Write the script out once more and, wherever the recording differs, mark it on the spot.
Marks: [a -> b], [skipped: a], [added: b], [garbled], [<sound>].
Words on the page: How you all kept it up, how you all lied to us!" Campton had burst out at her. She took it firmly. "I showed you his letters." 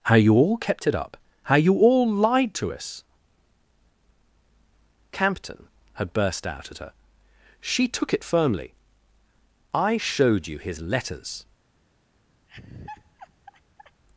How you all kept it up, how you all lied to us!" Campton had burst out at her. She took it firmly. "I showed you his letters." [laugh]